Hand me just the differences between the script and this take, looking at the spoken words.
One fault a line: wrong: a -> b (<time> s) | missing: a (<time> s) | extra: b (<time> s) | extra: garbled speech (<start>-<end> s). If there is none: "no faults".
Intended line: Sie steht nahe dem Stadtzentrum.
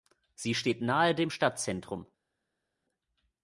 no faults